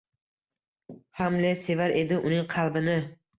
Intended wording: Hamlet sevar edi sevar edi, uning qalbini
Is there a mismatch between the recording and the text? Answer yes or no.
yes